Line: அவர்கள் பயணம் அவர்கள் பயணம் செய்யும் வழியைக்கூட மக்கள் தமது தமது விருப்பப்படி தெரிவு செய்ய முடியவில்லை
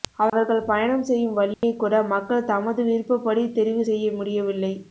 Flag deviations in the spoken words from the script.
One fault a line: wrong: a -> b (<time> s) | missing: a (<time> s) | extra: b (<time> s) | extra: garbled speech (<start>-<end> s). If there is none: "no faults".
missing: அவர்கள் பயணம் (1.0 s)
missing: தமது (2.8 s)